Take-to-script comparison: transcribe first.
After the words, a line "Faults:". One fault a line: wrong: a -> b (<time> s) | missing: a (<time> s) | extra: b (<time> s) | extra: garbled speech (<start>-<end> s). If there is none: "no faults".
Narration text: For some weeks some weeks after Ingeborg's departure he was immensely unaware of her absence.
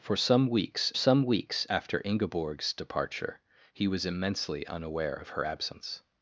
For some weeks some weeks after Ingeborg's departure he was immensely unaware of her absence.
Faults:
no faults